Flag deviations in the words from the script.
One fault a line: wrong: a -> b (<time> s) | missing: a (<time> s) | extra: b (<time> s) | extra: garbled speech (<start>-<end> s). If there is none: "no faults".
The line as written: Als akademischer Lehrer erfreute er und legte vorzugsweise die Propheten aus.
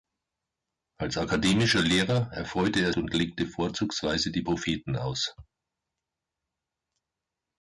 no faults